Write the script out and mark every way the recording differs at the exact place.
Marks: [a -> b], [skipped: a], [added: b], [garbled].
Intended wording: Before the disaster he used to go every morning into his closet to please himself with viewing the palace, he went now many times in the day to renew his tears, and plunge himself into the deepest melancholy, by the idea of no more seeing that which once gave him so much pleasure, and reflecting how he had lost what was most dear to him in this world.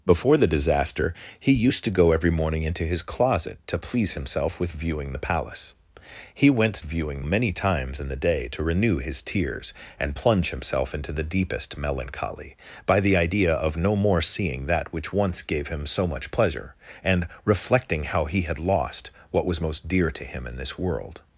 Before the disaster he used to go every morning into his closet to please himself with viewing the palace, he went [now -> viewing] many times in the day to renew his tears, and plunge himself into the deepest melancholy, by the idea of no more seeing that which once gave him so much pleasure, and reflecting how he had lost what was most dear to him in this world.